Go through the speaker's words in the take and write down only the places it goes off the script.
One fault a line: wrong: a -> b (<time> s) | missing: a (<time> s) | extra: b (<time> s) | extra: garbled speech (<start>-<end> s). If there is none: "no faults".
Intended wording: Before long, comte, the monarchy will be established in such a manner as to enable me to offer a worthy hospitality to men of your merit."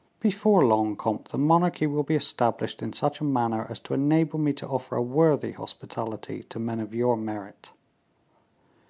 no faults